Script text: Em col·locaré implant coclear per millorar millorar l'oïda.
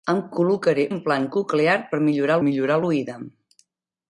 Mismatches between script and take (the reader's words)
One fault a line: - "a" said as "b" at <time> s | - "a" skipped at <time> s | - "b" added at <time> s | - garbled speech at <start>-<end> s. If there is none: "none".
none